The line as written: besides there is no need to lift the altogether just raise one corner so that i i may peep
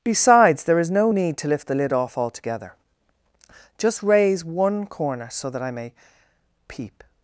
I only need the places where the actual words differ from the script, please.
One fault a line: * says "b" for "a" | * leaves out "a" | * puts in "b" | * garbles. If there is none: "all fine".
* puts in "lid off"
* leaves out "i"